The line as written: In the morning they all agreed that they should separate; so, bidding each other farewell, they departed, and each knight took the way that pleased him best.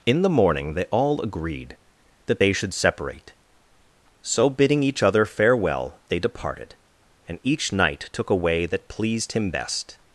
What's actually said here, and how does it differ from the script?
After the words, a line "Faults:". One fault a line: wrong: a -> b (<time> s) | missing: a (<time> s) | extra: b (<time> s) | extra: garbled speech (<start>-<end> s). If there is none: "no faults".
In the morning they all agreed that they should separate; so, bidding each other farewell, they departed, and each knight took a way that pleased him best.
Faults:
wrong: the -> a (8.3 s)